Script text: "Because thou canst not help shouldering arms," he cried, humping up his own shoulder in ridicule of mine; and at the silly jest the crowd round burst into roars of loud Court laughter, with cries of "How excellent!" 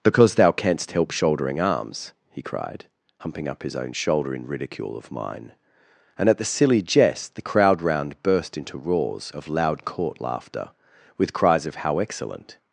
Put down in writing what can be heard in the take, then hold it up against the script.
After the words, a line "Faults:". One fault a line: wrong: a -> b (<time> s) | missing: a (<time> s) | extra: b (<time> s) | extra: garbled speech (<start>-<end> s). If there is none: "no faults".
"Because thou canst help shouldering arms," he cried, humping up his own shoulder in ridicule of mine; and at the silly jest the crowd round burst into roars of loud Court laughter, with cries of "How excellent!"
Faults:
missing: not (0.9 s)